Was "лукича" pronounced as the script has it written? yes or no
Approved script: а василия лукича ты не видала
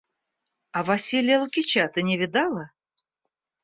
yes